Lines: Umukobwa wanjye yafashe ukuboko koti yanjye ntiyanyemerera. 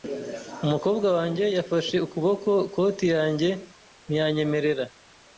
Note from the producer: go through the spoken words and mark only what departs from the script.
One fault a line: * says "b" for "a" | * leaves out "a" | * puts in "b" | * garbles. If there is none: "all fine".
all fine